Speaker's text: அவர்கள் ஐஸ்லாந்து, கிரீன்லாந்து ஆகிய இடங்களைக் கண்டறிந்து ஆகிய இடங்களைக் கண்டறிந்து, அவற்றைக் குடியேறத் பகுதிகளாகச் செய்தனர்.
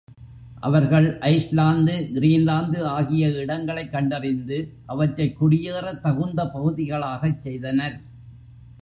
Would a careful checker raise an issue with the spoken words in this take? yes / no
yes